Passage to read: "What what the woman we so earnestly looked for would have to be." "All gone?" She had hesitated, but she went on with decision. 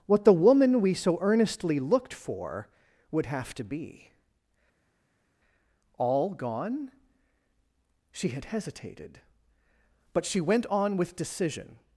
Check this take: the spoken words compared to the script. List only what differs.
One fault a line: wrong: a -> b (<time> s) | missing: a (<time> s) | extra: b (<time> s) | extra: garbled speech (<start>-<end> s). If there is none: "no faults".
missing: what (0.2 s)